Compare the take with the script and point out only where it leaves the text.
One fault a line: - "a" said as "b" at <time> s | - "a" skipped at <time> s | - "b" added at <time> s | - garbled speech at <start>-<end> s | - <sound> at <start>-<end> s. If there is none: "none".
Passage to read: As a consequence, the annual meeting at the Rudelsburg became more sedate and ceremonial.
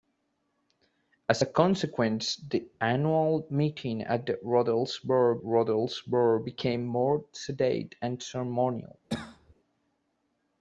- "Rudelsburg" added at 5.4 s
- cough at 9.1-9.5 s